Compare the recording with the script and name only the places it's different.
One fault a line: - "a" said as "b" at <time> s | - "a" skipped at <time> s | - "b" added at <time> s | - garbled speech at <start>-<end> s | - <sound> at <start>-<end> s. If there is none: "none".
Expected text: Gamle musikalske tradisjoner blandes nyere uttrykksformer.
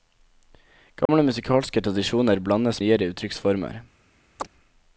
- dropout at 1.1-1.1 s
- chirp at 4.4-4.5 s